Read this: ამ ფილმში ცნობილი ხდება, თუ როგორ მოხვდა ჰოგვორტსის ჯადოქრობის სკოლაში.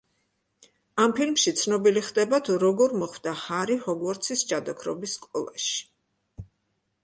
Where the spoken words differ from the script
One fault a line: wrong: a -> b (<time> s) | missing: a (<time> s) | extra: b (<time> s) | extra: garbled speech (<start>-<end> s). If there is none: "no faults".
extra: ჰარი (3.4 s)